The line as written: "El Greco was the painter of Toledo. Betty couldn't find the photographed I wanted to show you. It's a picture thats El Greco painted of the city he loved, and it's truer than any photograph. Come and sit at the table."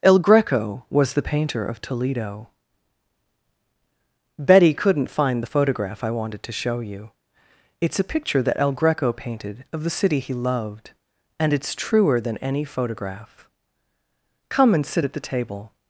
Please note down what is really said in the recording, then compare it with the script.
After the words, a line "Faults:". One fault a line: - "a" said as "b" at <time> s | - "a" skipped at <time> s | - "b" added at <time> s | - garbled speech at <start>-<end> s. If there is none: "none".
"El Greco was the painter of Toledo. Betty couldn't find the photograph I wanted to show you. It's a picture that El Greco painted of the city he loved, and it's truer than any photograph. Come and sit at the table."
Faults:
- "photographed" said as "photograph" at 5.4 s
- "thats" said as "that" at 8.4 s